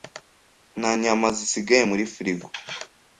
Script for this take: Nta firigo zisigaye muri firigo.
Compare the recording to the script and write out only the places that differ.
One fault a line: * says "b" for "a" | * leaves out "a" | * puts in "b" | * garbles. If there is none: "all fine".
* says "nyama" for "firigo"